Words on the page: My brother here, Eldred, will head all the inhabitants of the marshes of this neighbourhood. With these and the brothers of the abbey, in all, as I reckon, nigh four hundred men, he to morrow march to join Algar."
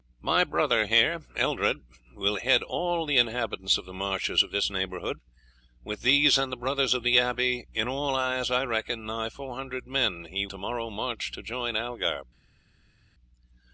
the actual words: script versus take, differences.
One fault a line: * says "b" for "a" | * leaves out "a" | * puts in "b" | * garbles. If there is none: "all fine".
all fine